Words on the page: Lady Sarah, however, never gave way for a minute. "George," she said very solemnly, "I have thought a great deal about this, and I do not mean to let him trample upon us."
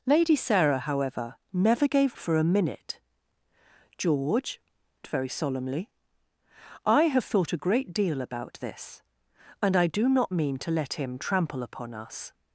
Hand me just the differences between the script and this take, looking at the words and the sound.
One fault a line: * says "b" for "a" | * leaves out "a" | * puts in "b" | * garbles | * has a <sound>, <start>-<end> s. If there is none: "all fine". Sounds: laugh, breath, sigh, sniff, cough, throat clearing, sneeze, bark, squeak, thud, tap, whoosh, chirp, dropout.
* leaves out "way"
* leaves out "she said"